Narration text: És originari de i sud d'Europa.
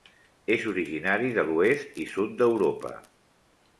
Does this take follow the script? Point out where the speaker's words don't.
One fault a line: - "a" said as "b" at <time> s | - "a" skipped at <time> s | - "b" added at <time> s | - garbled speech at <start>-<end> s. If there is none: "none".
- "l'oest" added at 1.5 s